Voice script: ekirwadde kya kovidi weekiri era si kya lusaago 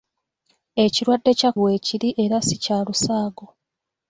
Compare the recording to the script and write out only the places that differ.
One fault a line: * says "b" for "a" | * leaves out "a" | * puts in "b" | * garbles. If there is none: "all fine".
* leaves out "kovidi"